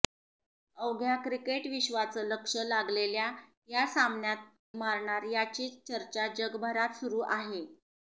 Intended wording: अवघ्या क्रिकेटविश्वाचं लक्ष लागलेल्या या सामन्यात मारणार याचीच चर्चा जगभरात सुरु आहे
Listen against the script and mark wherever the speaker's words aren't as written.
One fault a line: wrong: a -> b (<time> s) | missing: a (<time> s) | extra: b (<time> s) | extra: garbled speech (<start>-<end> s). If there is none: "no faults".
no faults